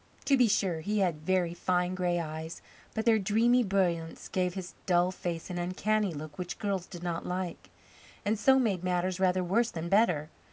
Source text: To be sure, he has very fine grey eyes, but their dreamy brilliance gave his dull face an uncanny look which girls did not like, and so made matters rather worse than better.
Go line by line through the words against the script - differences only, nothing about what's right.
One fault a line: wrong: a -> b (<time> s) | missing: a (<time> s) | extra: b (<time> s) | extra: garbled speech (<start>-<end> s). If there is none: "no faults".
wrong: has -> had (1.0 s)